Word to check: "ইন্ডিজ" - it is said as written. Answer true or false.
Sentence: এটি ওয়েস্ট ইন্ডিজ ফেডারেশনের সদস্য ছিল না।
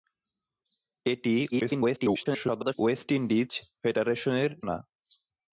true